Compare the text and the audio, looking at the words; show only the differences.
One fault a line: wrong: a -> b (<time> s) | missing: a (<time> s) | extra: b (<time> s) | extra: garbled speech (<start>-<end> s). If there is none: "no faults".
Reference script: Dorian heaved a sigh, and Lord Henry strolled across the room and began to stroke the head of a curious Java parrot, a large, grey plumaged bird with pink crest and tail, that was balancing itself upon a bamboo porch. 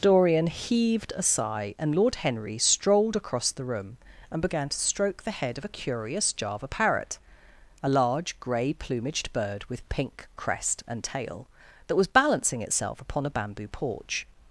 no faults